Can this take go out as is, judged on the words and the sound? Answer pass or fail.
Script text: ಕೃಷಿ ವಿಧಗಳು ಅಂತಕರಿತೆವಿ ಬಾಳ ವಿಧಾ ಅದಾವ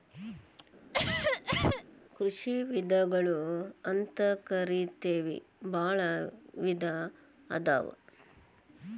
fail